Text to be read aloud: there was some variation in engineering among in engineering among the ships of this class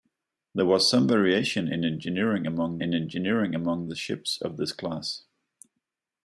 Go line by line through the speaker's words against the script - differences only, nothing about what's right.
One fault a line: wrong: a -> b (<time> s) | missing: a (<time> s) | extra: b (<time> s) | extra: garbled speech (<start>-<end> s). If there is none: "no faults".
no faults